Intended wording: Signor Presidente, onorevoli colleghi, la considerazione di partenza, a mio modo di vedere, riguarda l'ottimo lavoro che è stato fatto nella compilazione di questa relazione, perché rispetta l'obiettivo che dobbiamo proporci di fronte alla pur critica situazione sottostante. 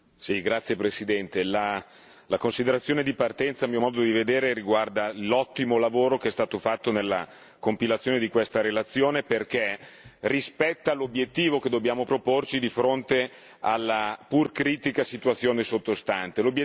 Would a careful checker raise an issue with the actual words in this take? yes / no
no